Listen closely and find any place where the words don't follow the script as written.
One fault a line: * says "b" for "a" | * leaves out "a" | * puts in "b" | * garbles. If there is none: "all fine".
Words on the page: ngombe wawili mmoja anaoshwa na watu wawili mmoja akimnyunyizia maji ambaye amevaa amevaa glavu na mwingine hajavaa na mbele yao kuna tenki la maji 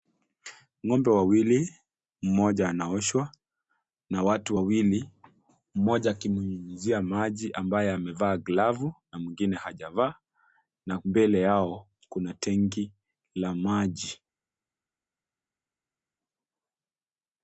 * leaves out "amevaa"